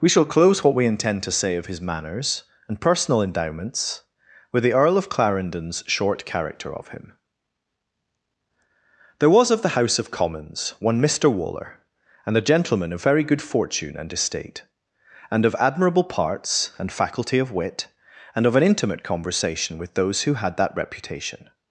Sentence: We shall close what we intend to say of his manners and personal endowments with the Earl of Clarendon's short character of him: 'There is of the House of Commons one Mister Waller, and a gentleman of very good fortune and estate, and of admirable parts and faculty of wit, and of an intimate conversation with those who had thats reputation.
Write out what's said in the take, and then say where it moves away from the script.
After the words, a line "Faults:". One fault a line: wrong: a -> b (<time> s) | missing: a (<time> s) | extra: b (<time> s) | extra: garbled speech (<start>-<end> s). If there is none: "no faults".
We shall close what we intend to say of his manners and personal endowments with the Earl of Clarendon's short character of him: 'There was of the House of Commons one Mister Waller, and a gentleman of very good fortune and estate, and of admirable parts and faculty of wit, and of an intimate conversation with those who had that reputation.
Faults:
wrong: is -> was (9.3 s)
wrong: thats -> that (20.6 s)